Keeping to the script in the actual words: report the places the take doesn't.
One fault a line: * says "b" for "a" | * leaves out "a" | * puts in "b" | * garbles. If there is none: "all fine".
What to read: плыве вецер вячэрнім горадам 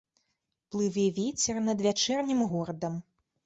* puts in "над"